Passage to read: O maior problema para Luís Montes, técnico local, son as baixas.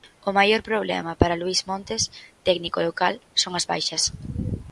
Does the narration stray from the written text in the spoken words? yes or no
no